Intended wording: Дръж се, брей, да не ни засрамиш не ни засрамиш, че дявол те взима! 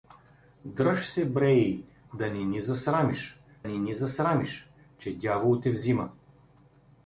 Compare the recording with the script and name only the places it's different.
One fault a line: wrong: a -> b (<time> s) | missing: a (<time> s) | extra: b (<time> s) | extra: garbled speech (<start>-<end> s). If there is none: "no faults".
no faults